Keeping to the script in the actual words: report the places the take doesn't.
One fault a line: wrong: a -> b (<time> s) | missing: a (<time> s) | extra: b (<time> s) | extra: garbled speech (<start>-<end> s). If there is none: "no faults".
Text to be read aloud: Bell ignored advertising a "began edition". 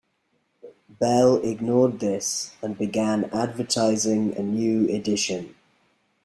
extra: this and began (2.0 s)
wrong: began -> new (4.4 s)